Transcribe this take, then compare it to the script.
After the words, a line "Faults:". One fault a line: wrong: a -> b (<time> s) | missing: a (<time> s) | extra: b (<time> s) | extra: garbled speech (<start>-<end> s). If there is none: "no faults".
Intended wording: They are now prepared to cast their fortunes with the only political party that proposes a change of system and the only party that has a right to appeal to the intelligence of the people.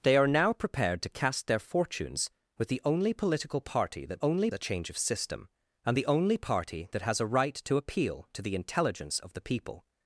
They are now prepared to cast their fortunes with the only political party that only a change of system and the only party that has a right to appeal to the intelligence of the people.
Faults:
wrong: proposes -> only (4.2 s)